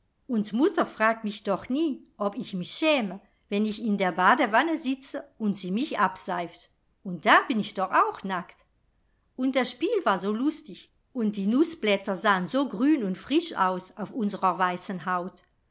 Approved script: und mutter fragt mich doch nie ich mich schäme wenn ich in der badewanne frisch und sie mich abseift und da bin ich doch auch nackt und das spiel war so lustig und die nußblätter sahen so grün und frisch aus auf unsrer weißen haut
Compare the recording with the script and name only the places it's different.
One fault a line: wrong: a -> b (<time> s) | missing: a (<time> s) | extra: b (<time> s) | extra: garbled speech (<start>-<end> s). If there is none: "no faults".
extra: ob (2.2 s)
wrong: frisch -> sitze (4.8 s)